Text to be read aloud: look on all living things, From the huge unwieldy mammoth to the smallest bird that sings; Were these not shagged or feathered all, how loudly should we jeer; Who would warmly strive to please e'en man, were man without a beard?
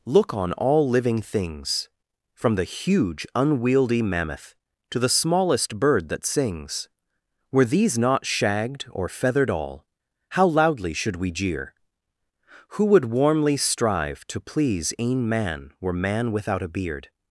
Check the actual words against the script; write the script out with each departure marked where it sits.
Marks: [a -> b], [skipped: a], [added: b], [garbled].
look on all living things, From the huge unwieldy mammoth to the smallest bird that sings; Were these not shagged or feathered all, how loudly should we jeer; Who would warmly strive to please e'en man, were man without a beard?